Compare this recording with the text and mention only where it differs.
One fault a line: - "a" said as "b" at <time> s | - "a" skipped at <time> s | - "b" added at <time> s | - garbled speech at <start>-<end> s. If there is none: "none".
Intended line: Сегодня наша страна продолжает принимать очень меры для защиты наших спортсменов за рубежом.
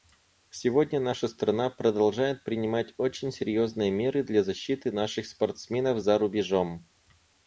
- "серьезные" added at 3.3 s